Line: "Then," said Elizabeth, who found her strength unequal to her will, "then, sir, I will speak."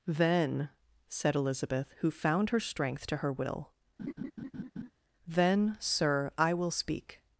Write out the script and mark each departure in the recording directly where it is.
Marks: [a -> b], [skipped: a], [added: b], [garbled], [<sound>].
"Then," said Elizabeth, who found her strength [skipped: unequal] to her will, [laugh] "then, sir, I will speak."